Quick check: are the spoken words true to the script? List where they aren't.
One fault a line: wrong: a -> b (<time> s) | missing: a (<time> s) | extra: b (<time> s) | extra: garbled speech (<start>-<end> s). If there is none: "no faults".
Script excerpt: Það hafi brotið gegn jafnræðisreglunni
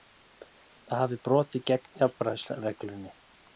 no faults